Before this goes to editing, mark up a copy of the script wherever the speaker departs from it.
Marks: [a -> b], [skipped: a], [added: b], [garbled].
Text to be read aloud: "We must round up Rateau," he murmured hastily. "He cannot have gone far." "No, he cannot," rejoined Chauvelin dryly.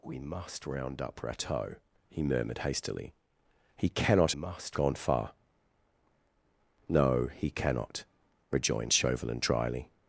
"We must round up Rateau," he murmured hastily. "He cannot [have -> must] gone far." "No, he cannot," rejoined Chauvelin dryly.